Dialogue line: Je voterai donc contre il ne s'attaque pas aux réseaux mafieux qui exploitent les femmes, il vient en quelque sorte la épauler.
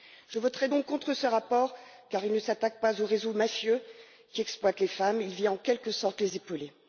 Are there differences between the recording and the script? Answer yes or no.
yes